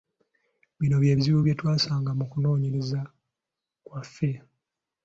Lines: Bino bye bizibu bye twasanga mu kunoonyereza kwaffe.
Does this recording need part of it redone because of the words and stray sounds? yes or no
no